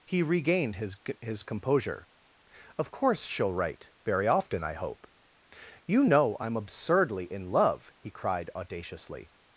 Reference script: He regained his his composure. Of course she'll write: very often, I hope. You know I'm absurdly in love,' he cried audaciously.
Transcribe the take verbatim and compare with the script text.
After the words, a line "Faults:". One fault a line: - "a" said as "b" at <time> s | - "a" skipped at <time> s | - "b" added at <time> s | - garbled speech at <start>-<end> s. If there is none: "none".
He regained his his composure. Of course she'll write: very often, I hope. You know I'm absurdly in love,' he cried audaciously.
Faults:
none